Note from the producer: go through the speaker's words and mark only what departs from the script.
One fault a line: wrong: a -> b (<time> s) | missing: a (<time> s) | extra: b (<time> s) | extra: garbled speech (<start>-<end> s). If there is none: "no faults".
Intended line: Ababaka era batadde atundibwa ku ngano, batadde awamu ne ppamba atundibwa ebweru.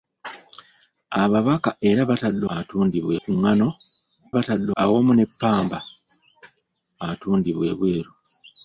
no faults